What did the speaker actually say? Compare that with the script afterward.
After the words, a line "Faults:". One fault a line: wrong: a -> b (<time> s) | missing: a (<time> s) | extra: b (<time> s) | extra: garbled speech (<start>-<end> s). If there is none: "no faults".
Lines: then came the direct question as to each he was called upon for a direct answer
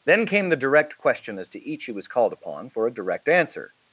then came the direct question as to each he was called upon for a direct answer
Faults:
no faults